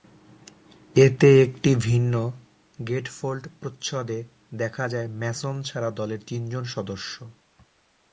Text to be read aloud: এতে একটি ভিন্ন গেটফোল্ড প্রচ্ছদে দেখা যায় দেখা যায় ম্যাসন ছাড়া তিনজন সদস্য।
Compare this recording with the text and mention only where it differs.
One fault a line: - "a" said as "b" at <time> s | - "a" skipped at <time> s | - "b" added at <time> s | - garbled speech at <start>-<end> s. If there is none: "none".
- "দেখা যায়" skipped at 5.1 s
- "দলের" added at 5.9 s